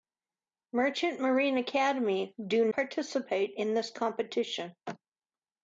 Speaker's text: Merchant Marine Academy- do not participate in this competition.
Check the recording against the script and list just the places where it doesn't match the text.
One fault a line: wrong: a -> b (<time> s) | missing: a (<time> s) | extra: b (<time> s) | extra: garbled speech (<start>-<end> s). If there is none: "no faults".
missing: not (2.7 s)